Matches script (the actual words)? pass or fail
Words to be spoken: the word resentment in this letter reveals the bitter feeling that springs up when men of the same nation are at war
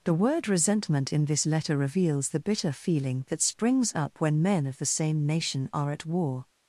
pass